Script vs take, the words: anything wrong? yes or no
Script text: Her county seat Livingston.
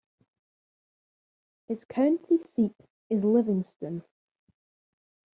yes